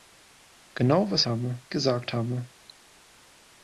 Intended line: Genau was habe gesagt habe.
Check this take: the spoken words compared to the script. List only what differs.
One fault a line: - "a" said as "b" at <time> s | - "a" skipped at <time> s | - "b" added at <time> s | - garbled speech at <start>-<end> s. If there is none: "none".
none